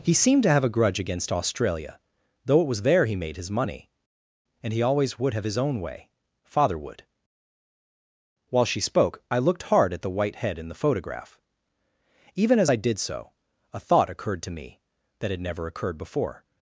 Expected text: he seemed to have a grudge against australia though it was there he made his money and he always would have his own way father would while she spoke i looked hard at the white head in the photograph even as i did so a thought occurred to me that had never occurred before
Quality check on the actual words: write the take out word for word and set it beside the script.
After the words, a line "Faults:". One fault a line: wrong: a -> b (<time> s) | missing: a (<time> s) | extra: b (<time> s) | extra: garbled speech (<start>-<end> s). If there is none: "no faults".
he seemed to have a grudge against australia though it was there he made his money and he always would have his own way father would while she spoke i looked hard at the white head in the photograph even as i did so a thought occurred to me that had never occurred before
Faults:
no faults